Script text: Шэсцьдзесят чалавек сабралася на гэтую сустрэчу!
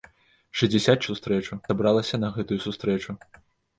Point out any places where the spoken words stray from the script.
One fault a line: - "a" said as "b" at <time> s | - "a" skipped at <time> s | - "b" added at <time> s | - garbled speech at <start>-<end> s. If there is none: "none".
- "чалавек" said as "сустрэчу" at 1.1 s